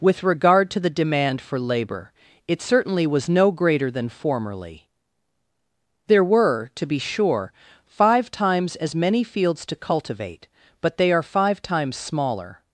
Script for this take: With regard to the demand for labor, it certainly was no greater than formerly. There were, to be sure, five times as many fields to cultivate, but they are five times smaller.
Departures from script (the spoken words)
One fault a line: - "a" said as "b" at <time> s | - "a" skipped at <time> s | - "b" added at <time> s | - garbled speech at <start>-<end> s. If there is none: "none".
none